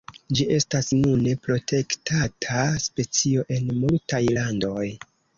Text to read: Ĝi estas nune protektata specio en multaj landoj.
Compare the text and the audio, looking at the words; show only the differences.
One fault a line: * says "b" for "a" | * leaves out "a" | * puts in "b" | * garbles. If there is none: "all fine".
all fine